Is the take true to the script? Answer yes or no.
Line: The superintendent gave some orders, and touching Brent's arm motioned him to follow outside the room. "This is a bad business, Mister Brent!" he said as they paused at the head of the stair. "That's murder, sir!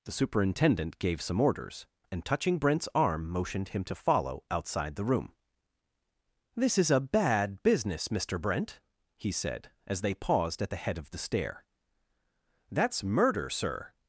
yes